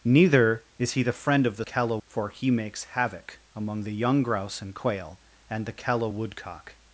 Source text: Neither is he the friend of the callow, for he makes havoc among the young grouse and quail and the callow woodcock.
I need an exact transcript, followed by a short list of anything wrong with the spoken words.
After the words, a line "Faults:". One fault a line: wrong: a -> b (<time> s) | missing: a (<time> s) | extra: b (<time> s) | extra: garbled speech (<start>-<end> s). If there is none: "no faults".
Neither is he the friend of the callow, for he makes havoc among the young grouse and quail and the callow woodcock.
Faults:
no faults